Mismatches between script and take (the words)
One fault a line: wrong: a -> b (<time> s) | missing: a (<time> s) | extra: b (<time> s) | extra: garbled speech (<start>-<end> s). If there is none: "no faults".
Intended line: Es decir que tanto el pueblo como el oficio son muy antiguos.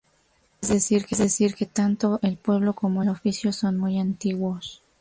no faults